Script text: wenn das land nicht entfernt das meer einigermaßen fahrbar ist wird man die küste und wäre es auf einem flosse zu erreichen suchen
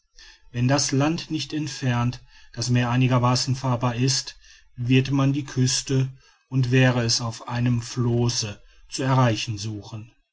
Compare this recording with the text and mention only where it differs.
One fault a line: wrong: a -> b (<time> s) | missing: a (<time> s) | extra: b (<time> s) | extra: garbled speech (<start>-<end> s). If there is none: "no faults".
no faults